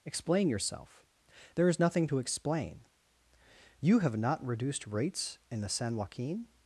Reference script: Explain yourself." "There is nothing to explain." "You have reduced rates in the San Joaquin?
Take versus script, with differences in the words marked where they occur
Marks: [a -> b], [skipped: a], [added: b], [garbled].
Explain yourself." "There is nothing to explain." "You have [added: not] reduced rates in the San Joaquin?